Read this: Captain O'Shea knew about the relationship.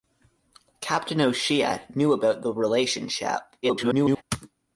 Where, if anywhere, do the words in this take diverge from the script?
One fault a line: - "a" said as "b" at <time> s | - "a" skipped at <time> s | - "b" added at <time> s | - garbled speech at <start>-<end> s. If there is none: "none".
- garbled speech at 3.6-4.2 s